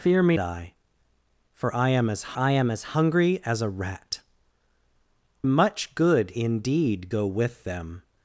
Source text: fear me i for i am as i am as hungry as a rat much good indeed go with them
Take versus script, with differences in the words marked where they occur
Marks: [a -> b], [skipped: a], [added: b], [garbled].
fear me i for i am as i am as hungry as a rat much good indeed go with them